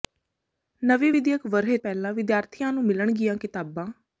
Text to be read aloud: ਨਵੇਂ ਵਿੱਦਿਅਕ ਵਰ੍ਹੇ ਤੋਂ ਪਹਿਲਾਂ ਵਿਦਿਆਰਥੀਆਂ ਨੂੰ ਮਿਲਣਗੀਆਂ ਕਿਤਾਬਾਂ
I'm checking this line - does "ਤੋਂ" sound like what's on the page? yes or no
no